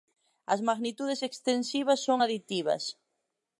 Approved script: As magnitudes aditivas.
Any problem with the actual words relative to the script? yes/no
yes